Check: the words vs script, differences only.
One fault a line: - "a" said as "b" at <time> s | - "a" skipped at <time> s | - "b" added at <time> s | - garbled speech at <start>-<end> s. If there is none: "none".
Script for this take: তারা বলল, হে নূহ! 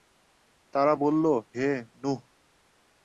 none